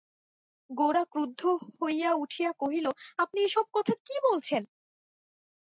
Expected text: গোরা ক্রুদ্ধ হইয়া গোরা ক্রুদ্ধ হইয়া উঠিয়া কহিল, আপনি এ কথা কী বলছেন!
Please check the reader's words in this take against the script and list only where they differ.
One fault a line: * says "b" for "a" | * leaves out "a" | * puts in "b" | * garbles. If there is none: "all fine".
* leaves out "গোরা ক্রুদ্ধ হইয়া"
* puts in "সব"